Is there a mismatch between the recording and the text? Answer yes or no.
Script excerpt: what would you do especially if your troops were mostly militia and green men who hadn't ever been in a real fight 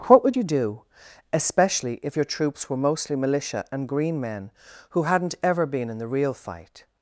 yes